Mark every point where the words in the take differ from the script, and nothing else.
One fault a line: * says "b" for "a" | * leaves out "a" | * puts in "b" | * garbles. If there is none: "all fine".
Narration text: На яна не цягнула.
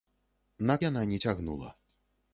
all fine